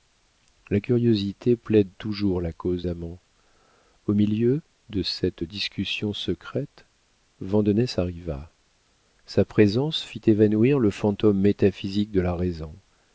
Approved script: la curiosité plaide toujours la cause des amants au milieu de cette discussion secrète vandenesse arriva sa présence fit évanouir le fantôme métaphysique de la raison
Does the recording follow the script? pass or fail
fail